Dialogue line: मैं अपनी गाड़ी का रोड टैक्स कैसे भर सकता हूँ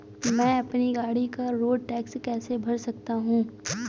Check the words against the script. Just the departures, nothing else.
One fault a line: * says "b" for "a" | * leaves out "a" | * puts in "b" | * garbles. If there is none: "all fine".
all fine